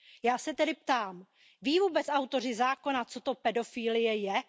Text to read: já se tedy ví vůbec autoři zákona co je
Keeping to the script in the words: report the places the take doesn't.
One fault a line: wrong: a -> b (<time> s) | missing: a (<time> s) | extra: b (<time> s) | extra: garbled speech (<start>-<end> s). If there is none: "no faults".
extra: ptám (0.7 s)
extra: to pedofilie (3.2 s)